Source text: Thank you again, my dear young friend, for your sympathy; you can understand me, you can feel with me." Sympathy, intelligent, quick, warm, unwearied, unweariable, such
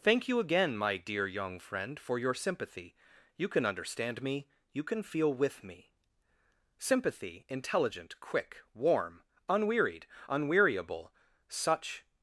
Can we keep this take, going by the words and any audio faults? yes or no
yes